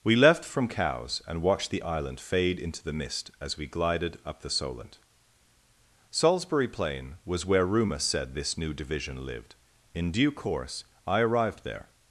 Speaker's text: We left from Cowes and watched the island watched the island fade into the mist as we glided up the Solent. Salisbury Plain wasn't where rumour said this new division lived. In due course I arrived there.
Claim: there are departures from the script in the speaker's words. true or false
true